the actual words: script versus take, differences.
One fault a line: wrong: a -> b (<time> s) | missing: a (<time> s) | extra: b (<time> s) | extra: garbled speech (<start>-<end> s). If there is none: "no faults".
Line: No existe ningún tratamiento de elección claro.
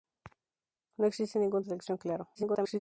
missing: tratamiento (1.6 s)
extra: garbled speech (2.3-2.8 s)